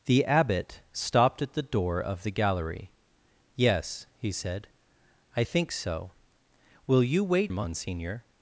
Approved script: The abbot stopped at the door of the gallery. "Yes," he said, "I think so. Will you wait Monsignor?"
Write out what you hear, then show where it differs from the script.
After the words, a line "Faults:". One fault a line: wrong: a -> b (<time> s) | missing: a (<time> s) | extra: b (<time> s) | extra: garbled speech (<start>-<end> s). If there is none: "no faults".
The abbot stopped at the door of the gallery. "Yes," he said, "I think so. Will you wait Monsignor?"
Faults:
no faults